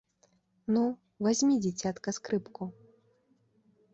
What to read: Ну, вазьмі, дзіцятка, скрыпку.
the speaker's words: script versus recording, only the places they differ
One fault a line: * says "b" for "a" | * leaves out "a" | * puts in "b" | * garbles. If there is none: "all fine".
all fine